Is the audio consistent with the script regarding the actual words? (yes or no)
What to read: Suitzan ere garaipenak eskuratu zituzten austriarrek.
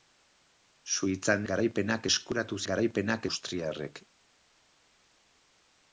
no